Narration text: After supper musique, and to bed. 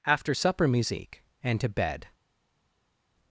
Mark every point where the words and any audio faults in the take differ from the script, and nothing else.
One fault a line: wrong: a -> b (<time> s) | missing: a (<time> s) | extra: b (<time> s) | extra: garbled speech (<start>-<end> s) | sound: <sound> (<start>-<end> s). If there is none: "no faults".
no faults